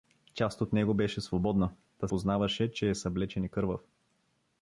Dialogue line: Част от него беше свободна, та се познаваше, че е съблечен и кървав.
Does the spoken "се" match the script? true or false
false